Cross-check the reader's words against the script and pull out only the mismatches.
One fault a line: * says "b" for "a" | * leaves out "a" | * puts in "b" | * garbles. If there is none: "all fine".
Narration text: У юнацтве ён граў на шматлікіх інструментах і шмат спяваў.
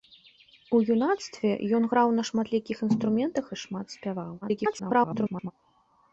* garbles